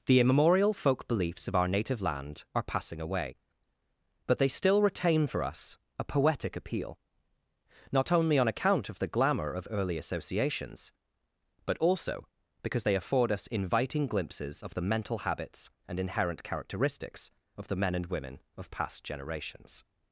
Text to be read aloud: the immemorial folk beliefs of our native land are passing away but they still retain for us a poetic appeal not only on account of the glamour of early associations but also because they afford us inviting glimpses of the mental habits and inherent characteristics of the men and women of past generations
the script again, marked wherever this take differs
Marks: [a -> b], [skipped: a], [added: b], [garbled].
the immemorial folk beliefs of our native land are passing away but they still retain for us a poetic appeal not only on account of the glamour of early associations but also because they afford us inviting glimpses of the mental habits and inherent characteristics of the men and women of past generations